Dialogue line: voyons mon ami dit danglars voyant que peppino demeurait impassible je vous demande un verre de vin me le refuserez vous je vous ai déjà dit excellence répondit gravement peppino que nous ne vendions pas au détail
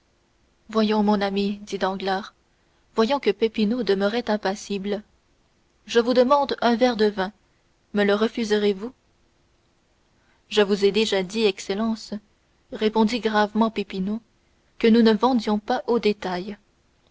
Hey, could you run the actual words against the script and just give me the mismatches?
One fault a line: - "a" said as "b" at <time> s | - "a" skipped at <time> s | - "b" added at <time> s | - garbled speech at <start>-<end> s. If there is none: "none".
none